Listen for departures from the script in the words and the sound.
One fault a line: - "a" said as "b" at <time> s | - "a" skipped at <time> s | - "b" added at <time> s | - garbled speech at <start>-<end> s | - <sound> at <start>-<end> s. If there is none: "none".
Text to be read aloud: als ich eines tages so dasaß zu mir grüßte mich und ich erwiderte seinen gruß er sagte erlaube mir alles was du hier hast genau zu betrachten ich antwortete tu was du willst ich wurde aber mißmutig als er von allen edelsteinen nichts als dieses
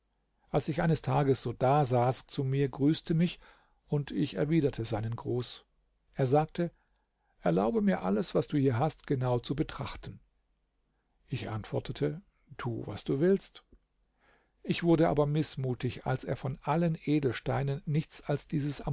none